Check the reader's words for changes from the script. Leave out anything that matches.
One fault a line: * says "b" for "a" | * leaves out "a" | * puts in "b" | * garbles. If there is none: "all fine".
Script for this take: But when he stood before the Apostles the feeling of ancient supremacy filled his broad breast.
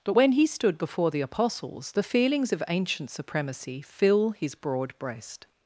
* says "feelings" for "feeling"
* says "fill" for "filled"